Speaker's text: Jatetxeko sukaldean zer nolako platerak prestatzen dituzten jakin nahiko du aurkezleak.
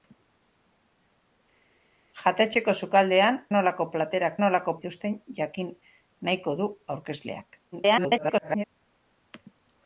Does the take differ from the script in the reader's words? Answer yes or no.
yes